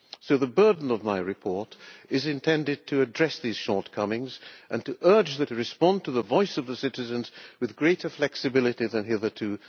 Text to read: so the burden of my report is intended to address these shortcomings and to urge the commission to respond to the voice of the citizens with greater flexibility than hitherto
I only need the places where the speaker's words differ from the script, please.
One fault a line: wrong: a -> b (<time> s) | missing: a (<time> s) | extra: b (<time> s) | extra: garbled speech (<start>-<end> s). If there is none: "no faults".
missing: commission (5.5 s)